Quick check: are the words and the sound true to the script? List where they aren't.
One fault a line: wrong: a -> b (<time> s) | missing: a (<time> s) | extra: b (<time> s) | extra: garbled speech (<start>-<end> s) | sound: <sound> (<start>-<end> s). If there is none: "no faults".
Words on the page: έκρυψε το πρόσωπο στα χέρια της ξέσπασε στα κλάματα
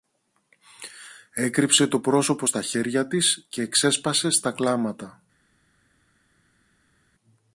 extra: και (3.5 s)